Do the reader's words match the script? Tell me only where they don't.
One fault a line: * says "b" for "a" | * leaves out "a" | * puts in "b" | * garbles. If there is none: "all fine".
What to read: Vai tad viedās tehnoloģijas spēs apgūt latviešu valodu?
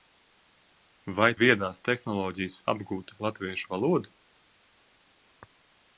* leaves out "tad"
* leaves out "spēs"